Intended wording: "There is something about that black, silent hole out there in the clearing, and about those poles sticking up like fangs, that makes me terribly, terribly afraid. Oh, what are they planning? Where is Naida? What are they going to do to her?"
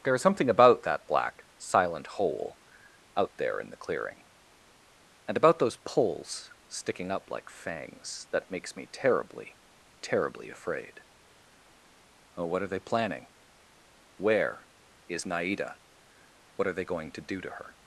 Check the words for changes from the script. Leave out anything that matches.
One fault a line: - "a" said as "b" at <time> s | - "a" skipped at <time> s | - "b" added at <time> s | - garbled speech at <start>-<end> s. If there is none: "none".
none